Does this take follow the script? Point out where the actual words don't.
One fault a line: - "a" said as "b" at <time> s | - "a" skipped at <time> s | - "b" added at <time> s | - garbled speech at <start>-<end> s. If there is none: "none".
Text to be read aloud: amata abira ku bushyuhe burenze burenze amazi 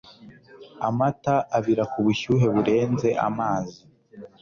- "burenze" skipped at 3.1 s